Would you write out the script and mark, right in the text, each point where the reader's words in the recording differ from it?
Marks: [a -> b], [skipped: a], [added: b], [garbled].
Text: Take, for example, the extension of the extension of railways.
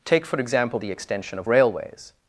Take, for example, the extension of [skipped: the extension of] railways.